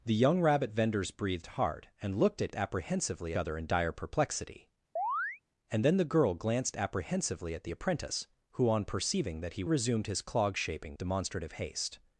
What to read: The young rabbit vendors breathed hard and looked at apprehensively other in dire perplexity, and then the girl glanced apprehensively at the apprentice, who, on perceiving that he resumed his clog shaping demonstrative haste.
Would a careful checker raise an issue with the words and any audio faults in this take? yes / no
yes